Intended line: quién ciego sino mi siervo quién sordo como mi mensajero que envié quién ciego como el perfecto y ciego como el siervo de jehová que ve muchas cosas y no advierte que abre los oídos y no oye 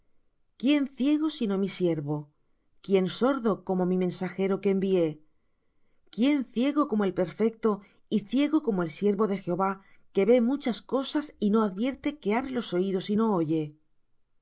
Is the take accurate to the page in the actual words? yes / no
yes